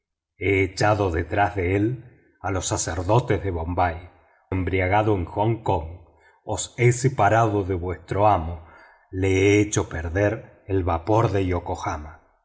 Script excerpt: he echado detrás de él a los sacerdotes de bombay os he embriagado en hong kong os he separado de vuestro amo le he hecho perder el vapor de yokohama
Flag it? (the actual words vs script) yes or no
yes